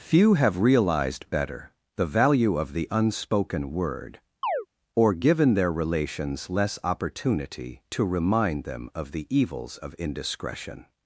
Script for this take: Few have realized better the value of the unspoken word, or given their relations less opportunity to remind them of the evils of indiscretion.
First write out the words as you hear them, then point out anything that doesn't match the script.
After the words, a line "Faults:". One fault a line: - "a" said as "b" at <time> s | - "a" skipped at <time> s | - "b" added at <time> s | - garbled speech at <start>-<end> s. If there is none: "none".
Few have realized better the value of the unspoken word, or given their relations less opportunity to remind them of the evils of indiscretion.
Faults:
none